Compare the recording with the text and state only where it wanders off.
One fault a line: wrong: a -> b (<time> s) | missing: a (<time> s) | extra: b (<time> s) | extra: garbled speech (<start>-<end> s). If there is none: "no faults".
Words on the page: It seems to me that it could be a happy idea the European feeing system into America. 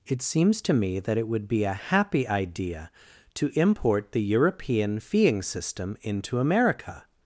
wrong: could -> would (1.3 s)
extra: to import (3.4 s)